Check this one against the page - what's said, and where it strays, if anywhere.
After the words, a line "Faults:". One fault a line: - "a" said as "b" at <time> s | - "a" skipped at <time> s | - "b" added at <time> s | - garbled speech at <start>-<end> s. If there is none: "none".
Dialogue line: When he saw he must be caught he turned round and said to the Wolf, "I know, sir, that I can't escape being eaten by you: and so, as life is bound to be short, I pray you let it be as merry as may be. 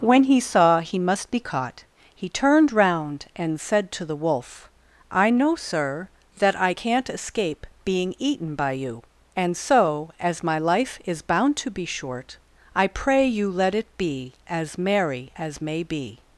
When he saw he must be caught he turned round and said to the Wolf, "I know, sir, that I can't escape being eaten by you: and so, as my life is bound to be short, I pray you let it be as merry as may be.
Faults:
- "my" added at 10.4 s